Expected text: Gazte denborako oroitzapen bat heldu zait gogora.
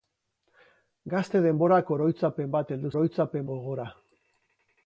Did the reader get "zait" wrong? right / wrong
wrong